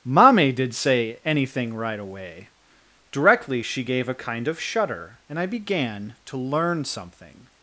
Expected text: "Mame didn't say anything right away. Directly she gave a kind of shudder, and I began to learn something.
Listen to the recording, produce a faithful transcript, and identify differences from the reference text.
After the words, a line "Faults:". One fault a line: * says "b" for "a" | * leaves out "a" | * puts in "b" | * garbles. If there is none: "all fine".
"Mame did say anything right away. Directly she gave a kind of shudder, and I began to learn something.
Faults:
* says "did" for "didn't"